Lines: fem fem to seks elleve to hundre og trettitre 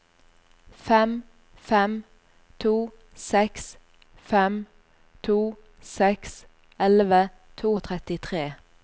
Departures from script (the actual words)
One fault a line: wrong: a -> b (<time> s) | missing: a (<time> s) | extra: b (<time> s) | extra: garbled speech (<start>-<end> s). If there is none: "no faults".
extra: fem to seks (4.1 s)
missing: hundre (7.8 s)